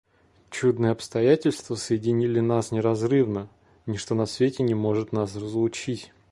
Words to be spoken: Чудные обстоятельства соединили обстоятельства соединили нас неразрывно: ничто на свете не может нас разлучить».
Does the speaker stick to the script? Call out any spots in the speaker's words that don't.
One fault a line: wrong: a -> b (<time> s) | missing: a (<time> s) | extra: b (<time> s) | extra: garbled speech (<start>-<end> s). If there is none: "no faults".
missing: обстоятельства соединили (2.4 s)